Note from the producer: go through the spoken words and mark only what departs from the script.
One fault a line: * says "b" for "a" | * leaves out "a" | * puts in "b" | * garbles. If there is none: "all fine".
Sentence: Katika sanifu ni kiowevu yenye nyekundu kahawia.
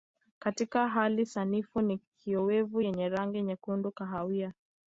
* puts in "hali"
* puts in "rangi"